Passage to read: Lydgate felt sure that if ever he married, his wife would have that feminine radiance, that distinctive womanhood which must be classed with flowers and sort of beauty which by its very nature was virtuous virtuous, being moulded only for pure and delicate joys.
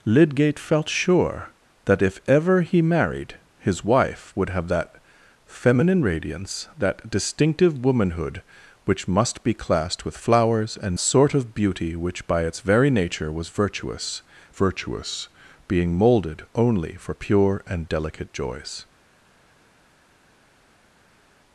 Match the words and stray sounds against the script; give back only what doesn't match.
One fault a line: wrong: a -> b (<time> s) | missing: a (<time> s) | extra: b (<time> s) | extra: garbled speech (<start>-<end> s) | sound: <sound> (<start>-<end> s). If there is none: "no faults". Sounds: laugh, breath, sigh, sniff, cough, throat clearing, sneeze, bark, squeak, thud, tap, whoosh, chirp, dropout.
no faults